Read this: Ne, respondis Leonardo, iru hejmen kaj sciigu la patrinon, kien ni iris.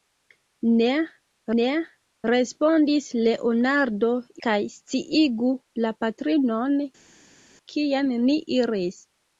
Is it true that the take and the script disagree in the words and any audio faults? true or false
true